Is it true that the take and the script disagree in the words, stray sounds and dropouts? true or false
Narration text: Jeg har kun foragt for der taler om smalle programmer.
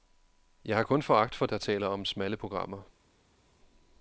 false